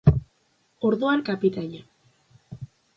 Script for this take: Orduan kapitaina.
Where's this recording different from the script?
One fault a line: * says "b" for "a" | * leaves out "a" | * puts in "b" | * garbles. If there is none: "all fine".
all fine